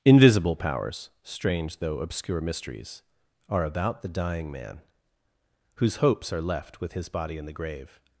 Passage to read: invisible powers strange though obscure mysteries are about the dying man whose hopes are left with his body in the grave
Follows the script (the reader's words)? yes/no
yes